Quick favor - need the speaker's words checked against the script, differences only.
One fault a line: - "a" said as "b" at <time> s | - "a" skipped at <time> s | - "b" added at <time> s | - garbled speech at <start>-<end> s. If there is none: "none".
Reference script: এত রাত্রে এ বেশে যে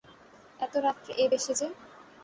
none